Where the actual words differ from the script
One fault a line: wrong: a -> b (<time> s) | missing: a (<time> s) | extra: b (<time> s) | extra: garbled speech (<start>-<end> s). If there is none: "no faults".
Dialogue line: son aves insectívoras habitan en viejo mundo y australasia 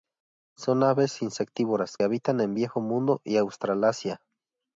no faults